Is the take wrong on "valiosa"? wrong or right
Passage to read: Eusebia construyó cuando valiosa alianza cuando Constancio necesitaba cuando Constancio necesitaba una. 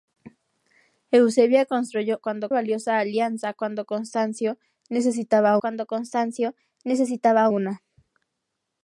right